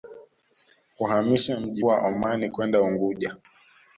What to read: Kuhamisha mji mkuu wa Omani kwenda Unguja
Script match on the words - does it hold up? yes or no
no